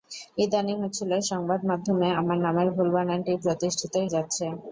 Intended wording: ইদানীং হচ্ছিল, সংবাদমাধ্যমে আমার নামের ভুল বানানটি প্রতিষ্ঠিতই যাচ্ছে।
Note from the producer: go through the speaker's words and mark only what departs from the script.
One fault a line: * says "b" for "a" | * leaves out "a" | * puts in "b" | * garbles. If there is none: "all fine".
all fine